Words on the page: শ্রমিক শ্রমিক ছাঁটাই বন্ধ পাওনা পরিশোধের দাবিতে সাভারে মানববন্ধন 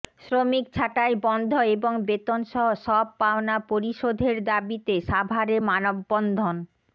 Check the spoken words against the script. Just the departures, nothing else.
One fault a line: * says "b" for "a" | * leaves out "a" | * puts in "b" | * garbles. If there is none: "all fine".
* leaves out "শ্রমিক"
* puts in "এবং বেতনসহ সব"